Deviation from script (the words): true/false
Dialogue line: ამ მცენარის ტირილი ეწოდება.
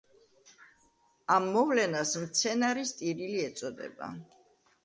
true